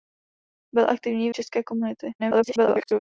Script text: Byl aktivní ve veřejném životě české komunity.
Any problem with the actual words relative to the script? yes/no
yes